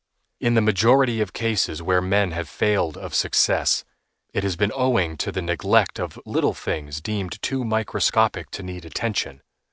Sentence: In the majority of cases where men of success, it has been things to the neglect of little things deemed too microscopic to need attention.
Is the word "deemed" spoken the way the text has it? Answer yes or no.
yes